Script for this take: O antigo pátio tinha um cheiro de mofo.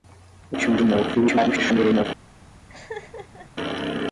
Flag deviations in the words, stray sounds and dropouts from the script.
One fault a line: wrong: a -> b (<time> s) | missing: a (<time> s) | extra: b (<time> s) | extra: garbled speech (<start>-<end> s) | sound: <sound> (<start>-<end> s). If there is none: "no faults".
missing: antigo pátio (0.6 s)
missing: cheiro (0.8 s)
extra: garbled speech (1.1-2.1 s)
sound: laugh (2.7-3.5 s)